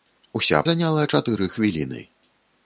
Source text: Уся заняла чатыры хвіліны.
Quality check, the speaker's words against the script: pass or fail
pass